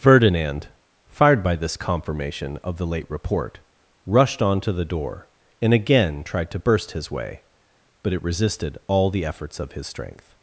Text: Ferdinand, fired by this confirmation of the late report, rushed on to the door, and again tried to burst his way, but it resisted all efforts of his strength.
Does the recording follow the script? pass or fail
fail